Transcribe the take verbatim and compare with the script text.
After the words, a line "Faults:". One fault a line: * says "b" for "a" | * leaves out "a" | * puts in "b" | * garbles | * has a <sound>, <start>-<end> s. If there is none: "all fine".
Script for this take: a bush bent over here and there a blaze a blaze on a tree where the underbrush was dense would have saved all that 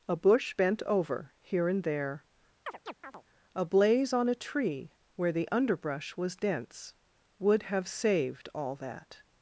a bush bent over here and there a blaze on a tree where the underbrush was dense would have saved all that
Faults:
* has a chirp, 2.7-3.2 s
* leaves out "a blaze"